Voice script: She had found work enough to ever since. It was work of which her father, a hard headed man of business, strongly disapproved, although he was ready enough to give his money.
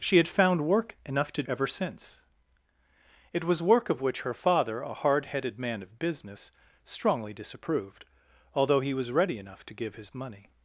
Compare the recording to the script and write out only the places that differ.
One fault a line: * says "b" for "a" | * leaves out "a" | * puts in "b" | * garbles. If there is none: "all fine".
all fine